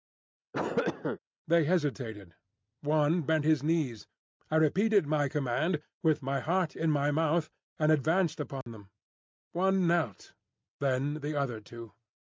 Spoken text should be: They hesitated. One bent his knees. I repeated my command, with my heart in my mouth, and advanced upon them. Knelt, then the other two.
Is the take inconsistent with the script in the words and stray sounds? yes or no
yes